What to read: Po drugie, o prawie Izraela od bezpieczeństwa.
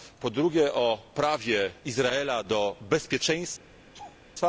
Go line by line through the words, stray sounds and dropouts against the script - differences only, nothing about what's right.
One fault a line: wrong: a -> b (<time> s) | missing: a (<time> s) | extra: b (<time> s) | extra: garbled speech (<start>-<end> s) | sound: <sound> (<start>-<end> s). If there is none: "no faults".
wrong: od -> do (2.4 s)
sound: laugh (3.9-4.2 s)